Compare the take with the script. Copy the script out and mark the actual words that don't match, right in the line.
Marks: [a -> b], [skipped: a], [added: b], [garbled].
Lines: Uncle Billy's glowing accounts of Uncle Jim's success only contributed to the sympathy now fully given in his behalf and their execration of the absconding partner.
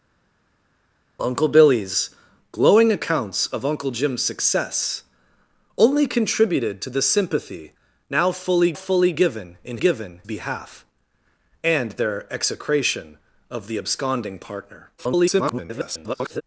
Uncle Billy's glowing accounts of Uncle Jim's success only contributed to the sympathy now fully [added: fully] given in [his -> given] behalf and their execration of the absconding partner. [garbled]